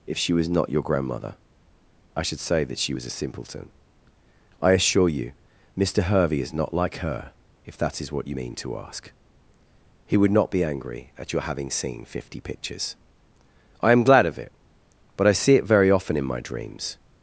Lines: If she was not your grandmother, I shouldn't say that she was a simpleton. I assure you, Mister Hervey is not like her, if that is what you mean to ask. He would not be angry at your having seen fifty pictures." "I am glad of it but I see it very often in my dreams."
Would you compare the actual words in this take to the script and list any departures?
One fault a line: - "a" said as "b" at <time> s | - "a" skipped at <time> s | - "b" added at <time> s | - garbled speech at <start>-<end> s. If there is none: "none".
- "shouldn't" said as "should" at 2.2 s